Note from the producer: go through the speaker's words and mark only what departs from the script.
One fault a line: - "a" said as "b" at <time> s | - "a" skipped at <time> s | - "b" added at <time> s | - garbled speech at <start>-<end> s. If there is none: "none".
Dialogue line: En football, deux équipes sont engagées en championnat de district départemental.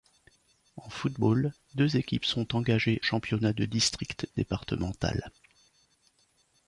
- "en" skipped at 3.0 s